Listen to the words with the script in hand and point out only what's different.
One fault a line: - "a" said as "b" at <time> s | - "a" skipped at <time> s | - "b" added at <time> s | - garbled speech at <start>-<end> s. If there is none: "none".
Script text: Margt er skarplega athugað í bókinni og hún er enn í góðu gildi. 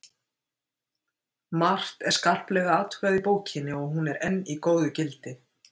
none